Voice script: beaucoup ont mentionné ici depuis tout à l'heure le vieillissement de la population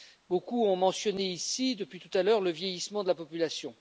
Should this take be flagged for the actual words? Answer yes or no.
no